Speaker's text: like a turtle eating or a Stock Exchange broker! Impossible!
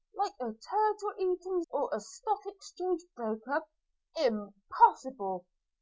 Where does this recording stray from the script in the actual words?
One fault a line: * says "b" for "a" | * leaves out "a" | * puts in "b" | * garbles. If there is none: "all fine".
all fine